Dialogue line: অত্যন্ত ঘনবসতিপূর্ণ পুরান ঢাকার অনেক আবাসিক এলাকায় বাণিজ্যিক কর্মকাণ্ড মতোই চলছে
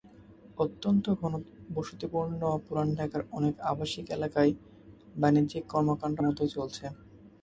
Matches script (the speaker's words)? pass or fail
pass